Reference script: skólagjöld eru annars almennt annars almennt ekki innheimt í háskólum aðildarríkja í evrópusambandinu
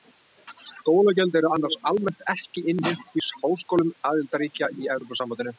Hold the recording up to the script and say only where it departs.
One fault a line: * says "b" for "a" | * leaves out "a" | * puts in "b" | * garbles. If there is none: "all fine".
* leaves out "annars almennt"